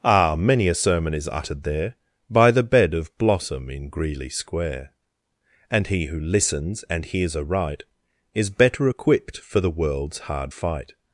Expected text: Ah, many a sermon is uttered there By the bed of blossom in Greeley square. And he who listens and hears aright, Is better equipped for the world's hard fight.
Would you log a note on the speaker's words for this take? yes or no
no